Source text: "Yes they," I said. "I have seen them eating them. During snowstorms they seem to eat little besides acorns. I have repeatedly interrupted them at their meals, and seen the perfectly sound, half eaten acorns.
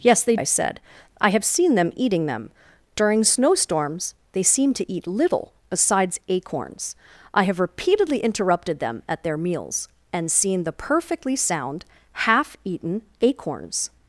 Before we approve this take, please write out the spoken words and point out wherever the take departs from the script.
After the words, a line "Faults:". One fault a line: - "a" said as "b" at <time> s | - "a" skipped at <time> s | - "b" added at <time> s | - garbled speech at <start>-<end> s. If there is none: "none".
"Yes they," I said. "I have seen them eating them. During snowstorms they seem to eat little besides acorns. I have repeatedly interrupted them at their meals, and seen the perfectly sound, half eaten acorns.
Faults:
none